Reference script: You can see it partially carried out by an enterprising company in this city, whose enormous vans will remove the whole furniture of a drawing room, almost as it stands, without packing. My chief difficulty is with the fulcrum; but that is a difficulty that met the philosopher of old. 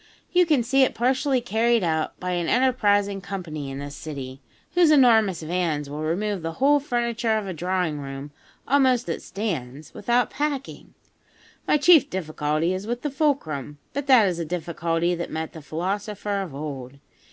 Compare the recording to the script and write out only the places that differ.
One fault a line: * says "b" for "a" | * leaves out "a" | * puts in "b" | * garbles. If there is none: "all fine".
* leaves out "as"